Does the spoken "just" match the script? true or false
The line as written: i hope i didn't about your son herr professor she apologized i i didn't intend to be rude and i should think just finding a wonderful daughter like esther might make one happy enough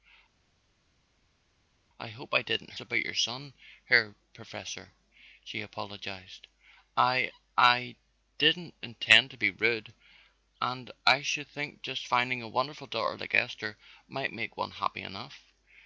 true